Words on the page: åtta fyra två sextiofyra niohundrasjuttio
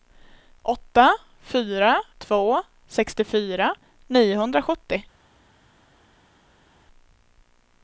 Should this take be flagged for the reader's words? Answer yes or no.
no